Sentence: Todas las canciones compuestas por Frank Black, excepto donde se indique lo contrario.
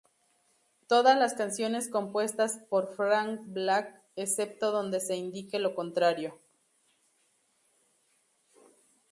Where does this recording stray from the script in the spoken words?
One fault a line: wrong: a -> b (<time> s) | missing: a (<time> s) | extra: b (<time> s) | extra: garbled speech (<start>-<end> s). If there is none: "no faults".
no faults